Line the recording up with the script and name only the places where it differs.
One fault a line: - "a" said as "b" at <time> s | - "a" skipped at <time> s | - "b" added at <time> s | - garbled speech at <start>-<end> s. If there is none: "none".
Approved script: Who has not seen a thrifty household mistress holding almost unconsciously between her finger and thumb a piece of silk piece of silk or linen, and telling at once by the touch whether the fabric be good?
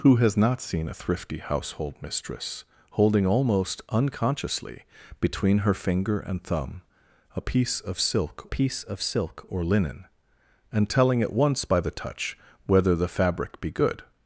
none